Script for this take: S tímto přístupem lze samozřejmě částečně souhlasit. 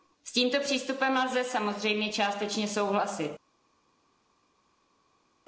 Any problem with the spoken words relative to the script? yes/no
no